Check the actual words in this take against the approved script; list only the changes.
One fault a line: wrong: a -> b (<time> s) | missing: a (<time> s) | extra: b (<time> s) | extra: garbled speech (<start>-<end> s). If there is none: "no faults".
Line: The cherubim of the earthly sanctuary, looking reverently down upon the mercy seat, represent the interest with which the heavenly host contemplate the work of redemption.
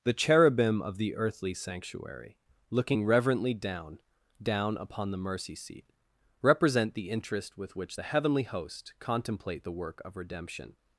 extra: down (4.4 s)